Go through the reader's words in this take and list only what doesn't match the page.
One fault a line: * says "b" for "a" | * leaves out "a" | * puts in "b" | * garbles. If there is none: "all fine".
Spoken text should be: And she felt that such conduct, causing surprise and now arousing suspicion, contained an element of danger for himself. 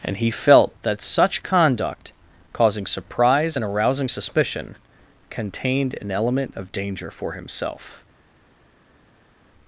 * says "he" for "she"
* leaves out "now"